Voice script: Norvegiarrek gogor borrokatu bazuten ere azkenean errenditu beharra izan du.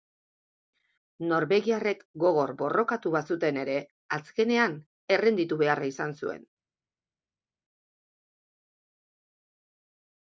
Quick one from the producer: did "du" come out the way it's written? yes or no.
no